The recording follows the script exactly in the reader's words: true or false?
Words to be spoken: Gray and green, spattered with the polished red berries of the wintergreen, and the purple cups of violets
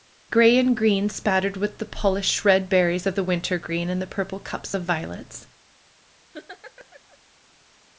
true